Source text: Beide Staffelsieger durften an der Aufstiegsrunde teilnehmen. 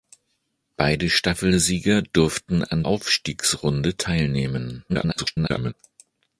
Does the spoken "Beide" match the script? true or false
true